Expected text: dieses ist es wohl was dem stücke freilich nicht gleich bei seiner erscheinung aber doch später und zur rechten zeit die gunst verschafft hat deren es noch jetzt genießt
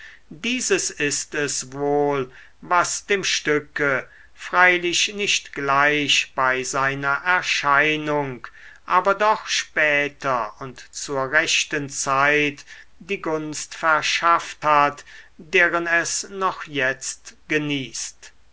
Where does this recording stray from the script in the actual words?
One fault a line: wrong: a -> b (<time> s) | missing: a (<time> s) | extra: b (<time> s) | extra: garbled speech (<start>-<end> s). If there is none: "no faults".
no faults